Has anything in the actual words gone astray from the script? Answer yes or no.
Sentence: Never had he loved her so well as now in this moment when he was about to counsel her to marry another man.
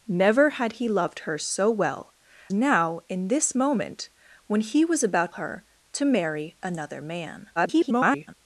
yes